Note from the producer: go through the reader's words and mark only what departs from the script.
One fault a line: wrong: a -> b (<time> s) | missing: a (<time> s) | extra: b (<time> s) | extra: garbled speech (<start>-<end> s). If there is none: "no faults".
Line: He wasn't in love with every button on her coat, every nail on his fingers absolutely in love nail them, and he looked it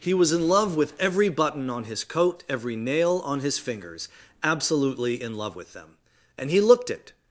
wrong: wasn't -> was (0.1 s)
wrong: her -> his (1.8 s)
wrong: nail -> with (5.5 s)